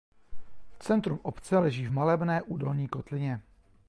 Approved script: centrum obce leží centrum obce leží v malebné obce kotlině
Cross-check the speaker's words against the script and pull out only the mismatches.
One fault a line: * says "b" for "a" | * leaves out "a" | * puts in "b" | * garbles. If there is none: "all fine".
* leaves out "centrum obce leží"
* says "údolní" for "obce"